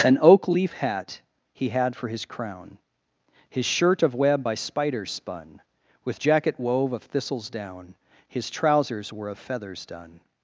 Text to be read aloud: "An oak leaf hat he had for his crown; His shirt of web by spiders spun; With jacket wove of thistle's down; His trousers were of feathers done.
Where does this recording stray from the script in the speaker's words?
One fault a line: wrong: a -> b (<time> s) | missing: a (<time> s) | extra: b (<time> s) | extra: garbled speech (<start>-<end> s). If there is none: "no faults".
no faults